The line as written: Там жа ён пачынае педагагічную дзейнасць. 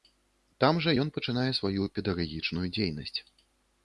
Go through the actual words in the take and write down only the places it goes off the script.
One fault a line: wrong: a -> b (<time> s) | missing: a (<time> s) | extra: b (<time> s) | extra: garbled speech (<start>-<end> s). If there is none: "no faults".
extra: сваю (1.6 s)